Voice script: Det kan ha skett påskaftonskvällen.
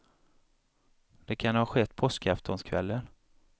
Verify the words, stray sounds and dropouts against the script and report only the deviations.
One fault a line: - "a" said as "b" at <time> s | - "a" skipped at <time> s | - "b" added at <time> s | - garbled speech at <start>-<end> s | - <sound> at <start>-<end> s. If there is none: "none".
none